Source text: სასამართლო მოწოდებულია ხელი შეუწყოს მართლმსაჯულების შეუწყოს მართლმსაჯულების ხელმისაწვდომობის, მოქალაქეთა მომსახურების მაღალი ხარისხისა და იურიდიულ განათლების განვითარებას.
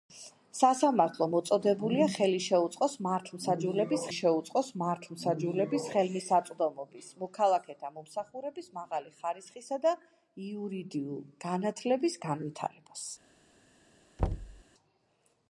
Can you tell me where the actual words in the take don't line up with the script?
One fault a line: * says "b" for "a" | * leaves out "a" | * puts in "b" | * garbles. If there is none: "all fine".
all fine